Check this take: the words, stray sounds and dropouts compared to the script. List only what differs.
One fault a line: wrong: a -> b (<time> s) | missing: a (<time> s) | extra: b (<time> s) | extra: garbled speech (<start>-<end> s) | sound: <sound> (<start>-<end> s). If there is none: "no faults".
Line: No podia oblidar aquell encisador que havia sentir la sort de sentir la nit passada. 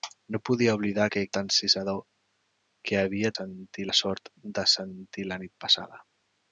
no faults